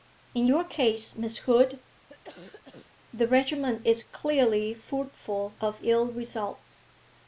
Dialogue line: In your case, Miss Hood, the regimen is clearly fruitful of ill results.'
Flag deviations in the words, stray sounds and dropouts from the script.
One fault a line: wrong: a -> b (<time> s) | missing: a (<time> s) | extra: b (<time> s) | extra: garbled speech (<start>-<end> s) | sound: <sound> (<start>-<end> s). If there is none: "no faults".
sound: cough (2.1-2.9 s)